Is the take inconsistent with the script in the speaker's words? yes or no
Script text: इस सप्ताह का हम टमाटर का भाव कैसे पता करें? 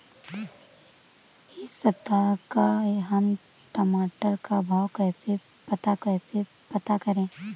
yes